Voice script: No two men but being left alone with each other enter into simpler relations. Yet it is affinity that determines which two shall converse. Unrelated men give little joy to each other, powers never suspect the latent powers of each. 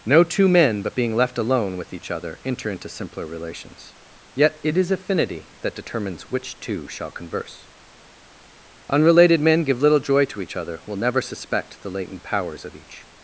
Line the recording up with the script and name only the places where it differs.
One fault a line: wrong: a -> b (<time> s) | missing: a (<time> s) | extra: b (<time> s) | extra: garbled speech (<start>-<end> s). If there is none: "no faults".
wrong: powers -> will (10.8 s)